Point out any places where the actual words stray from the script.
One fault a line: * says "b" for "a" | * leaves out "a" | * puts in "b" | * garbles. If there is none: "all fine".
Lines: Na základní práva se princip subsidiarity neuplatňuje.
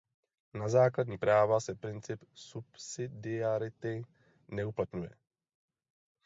all fine